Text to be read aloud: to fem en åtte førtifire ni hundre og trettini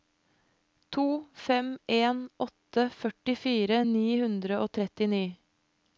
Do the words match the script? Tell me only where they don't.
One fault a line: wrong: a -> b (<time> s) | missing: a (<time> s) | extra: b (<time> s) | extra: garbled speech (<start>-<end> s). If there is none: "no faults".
no faults